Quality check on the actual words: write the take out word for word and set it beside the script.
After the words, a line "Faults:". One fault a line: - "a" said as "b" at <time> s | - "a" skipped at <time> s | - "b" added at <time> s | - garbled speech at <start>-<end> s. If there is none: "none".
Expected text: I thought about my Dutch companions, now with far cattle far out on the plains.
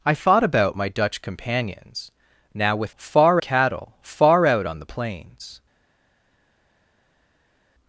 I thought about my Dutch companions, now with far cattle far out on the plains.
Faults:
none